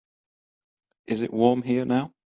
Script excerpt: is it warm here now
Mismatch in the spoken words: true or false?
false